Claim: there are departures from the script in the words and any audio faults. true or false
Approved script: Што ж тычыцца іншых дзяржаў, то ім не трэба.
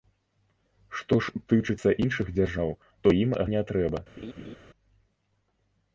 true